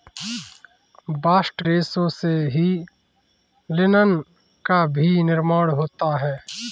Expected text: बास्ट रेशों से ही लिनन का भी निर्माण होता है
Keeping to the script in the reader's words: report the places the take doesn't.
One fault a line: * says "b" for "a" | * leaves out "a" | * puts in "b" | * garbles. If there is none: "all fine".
all fine